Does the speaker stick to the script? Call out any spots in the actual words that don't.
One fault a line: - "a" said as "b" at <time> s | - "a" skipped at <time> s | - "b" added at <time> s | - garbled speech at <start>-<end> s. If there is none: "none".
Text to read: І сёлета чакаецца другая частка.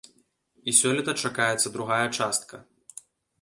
none